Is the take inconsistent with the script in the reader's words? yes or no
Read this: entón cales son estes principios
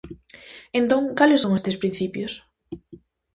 no